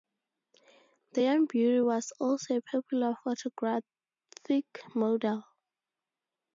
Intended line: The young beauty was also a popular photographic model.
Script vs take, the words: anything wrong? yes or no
no